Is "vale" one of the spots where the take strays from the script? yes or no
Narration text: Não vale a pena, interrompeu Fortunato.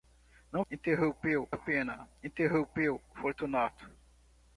yes